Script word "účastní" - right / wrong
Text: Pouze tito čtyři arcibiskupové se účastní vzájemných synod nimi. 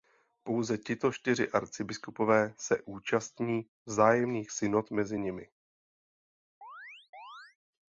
right